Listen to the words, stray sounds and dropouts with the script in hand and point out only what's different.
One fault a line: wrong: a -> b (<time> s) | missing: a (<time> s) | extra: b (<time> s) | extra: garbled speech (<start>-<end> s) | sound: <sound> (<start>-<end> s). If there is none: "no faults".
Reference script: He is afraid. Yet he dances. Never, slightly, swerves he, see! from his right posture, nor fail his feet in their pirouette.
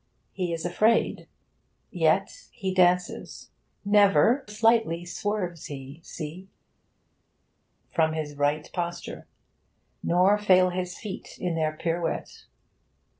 no faults